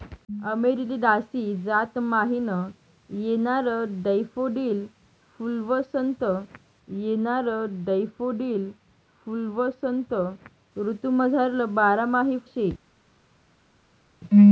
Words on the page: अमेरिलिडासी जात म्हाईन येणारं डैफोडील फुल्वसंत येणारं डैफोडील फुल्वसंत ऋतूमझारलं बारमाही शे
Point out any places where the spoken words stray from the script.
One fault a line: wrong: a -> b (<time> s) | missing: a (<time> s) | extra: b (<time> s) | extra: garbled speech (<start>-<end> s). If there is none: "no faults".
no faults